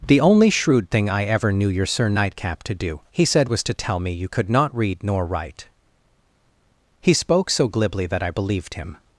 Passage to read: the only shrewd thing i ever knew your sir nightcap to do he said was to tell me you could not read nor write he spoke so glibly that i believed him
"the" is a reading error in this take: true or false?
false